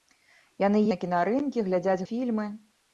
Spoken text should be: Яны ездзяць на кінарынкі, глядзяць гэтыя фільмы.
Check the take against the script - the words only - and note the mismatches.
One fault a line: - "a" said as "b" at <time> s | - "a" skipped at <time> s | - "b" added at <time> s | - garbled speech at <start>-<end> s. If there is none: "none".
- "ездзяць" skipped at 0.8 s
- "гэтыя" skipped at 2.1 s